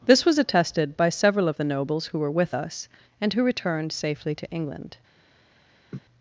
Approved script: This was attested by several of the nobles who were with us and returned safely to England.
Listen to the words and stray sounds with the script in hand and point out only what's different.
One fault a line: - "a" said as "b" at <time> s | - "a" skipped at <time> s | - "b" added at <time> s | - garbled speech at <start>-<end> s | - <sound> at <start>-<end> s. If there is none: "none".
- "who" added at 3.3 s
- laugh at 5.9-6.0 s